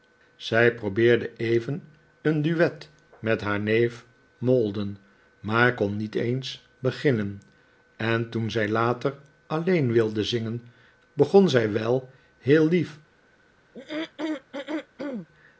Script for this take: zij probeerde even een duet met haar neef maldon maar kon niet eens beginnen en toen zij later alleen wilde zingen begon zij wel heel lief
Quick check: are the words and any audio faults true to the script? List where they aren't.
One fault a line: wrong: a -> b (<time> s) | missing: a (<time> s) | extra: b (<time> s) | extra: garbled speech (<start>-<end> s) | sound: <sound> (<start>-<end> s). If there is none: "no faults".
sound: throat clearing (13.7-15.3 s)